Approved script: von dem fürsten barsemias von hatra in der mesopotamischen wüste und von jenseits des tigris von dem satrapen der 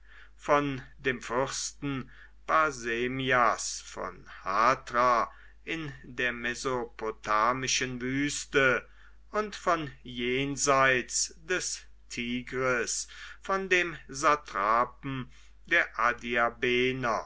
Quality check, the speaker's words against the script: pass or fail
pass